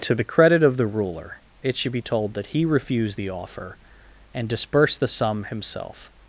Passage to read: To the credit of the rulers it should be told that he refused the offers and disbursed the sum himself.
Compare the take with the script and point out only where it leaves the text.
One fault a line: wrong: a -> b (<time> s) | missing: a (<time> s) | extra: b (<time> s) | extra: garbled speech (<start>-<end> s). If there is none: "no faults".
wrong: rulers -> ruler (0.9 s)
wrong: offers -> offer (3.3 s)